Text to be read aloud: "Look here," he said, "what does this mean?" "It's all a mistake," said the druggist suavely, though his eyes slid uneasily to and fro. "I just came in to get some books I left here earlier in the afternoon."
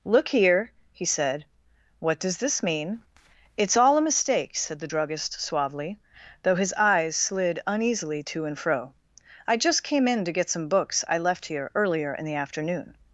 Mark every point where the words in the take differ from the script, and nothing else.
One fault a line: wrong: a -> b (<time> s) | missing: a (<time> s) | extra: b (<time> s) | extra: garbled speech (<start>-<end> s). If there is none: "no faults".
no faults